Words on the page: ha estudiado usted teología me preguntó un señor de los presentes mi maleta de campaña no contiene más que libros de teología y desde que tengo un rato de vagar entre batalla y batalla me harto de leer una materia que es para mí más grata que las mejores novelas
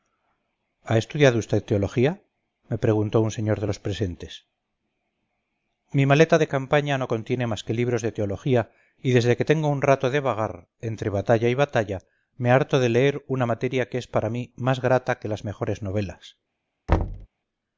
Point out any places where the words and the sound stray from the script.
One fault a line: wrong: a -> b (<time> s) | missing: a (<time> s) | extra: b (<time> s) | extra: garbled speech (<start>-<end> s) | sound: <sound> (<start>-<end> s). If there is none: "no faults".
sound: thud (16.9-17.3 s)